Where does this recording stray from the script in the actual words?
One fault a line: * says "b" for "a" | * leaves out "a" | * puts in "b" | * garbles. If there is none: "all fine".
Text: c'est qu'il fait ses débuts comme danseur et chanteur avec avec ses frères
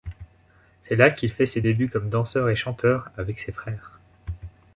* puts in "là"
* leaves out "avec"